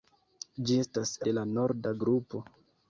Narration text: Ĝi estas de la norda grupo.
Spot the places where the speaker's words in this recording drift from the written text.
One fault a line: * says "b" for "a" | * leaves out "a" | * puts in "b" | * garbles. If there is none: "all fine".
all fine